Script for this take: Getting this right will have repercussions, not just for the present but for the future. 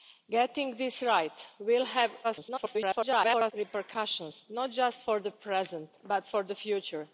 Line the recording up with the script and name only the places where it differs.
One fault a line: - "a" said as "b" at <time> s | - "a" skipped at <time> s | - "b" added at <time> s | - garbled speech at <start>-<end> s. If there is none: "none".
- garbled speech at 2.2-3.5 s